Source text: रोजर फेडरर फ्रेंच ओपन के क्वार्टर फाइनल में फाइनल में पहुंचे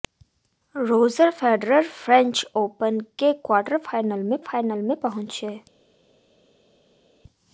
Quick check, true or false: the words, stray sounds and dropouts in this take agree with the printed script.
true